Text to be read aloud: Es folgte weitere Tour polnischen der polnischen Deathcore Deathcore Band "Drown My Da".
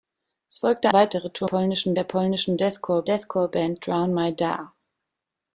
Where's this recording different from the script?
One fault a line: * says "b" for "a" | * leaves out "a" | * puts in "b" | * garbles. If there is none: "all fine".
all fine